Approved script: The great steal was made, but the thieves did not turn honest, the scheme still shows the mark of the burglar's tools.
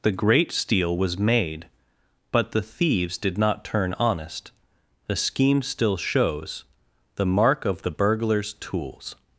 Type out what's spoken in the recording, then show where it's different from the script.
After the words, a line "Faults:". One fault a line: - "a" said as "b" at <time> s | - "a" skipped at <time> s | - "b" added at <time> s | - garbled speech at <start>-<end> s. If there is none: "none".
The great steal was made, but the thieves did not turn honest, the scheme still shows the mark of the burglar's tools.
Faults:
none